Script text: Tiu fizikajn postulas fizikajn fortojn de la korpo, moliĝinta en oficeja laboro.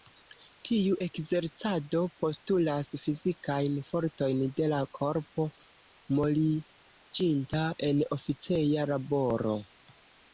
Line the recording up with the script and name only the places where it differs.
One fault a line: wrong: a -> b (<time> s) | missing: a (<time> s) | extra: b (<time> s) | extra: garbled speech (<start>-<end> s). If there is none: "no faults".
wrong: fizikajn -> ekzercado (1.0 s)